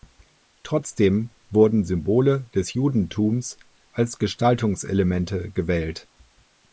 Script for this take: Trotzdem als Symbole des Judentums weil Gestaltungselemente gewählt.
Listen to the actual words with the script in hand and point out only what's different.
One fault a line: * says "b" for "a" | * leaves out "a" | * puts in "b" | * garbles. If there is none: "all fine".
* says "wurden" for "als"
* says "als" for "weil"